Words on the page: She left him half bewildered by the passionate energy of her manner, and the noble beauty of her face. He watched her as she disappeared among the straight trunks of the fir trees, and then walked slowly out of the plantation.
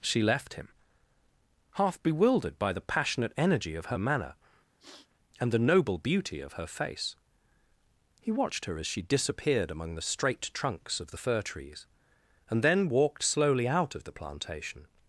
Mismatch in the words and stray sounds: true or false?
true